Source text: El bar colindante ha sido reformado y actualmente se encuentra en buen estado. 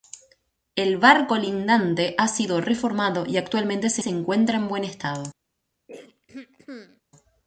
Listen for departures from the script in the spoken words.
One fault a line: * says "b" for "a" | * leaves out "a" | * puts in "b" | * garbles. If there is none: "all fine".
* puts in "se"